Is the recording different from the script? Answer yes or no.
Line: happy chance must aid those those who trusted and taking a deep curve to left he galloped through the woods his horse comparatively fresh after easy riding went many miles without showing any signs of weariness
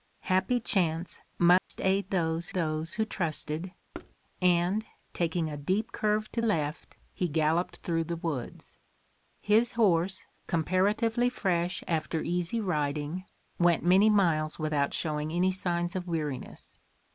no